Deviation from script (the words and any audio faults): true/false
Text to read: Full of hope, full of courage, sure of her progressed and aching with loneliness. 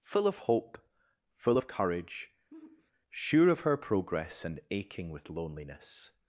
true